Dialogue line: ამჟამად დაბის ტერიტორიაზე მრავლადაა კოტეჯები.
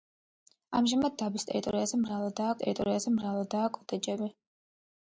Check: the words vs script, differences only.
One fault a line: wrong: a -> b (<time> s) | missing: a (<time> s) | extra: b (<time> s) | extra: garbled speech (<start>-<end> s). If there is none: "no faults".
extra: ტერიტორიაზე მრავლადაა (2.6 s)